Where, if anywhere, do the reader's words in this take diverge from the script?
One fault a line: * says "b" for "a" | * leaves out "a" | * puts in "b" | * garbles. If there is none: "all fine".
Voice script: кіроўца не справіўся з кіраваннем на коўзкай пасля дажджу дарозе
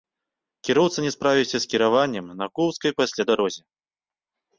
* leaves out "дажджу"